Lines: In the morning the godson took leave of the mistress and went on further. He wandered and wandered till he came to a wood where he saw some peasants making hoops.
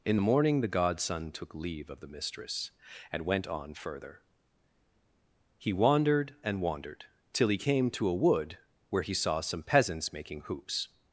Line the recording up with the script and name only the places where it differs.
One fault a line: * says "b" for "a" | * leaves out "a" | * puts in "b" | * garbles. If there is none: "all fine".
all fine